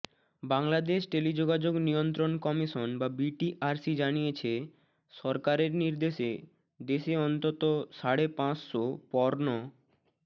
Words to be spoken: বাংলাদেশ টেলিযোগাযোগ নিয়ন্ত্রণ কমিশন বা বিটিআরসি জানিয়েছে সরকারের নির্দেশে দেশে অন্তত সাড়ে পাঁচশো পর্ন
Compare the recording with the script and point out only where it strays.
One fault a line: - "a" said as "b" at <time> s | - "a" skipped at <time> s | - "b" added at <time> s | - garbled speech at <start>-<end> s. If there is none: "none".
none